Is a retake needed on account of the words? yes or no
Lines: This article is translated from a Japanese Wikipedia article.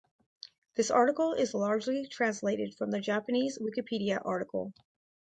yes